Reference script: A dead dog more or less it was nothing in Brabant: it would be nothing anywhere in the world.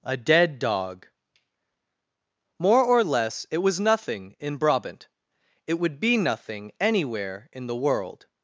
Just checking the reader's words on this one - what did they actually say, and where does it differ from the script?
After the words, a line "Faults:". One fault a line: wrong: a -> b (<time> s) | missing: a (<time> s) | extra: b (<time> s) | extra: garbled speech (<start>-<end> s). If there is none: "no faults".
A dead dog more or less it was nothing in Brabant: it would be nothing anywhere in the world.
Faults:
no faults